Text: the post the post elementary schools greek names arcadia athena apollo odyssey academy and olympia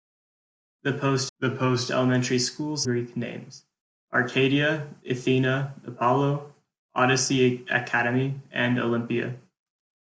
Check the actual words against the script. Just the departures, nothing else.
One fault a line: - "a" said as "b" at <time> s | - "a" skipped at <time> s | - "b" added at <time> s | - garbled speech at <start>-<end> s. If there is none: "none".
none